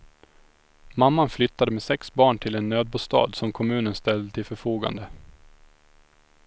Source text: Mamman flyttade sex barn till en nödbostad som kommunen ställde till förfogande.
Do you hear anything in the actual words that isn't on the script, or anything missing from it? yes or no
yes